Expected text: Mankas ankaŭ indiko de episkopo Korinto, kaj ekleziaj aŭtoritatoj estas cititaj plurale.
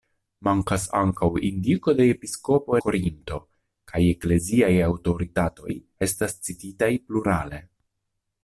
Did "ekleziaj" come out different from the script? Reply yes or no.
no